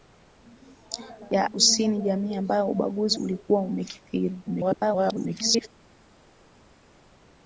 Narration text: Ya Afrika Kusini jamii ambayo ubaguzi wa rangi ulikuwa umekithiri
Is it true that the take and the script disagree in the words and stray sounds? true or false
true